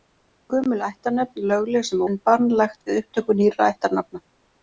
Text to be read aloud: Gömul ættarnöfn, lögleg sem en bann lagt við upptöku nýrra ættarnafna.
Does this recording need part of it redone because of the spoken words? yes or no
no